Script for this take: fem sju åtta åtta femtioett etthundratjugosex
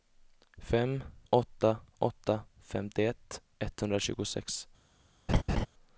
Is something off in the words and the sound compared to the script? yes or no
yes